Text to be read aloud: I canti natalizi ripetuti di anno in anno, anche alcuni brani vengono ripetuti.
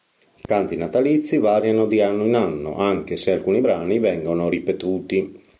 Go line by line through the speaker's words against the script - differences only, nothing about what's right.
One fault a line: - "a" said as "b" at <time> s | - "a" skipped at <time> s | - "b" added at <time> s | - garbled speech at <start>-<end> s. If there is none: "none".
- "ripetuti" said as "variano" at 1.4 s
- "se" added at 3.2 s